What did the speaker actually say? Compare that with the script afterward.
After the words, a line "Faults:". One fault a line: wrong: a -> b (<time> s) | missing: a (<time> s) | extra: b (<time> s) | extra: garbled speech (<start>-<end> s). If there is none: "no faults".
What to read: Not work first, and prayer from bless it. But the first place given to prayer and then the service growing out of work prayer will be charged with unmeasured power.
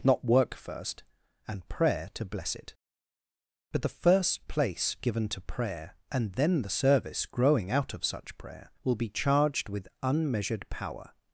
Not work first, and prayer to bless it. But the first place given to prayer and then the service growing out of such prayer will be charged with unmeasured power.
Faults:
wrong: from -> to (2.1 s)
wrong: work -> such (8.0 s)